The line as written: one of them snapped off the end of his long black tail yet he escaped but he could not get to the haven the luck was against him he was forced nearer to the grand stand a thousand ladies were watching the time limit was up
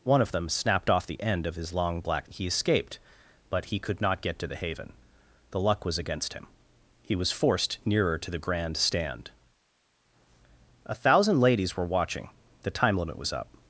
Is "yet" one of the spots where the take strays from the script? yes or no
yes